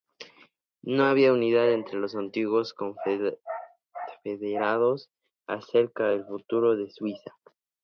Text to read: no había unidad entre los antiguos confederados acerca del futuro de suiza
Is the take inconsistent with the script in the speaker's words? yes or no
no